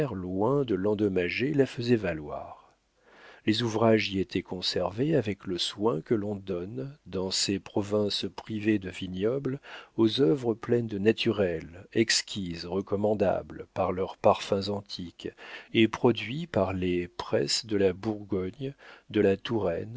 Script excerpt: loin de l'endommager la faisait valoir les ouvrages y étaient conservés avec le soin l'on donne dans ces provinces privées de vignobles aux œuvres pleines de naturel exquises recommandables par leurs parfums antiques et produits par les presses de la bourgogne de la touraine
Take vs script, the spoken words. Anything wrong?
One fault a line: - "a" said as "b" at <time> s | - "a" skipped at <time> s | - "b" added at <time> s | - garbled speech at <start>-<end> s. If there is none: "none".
- "que" added at 6.0 s